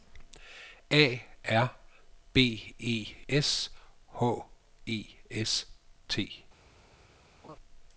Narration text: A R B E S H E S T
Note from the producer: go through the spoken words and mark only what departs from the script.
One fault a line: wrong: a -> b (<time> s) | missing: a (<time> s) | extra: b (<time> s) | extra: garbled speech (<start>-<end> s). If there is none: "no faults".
no faults